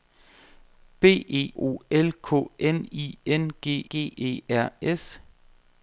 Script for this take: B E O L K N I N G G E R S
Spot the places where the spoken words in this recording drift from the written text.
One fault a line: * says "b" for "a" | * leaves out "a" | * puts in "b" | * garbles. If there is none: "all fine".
all fine